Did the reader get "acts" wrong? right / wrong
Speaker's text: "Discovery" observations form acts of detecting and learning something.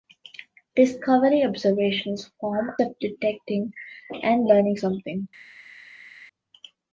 wrong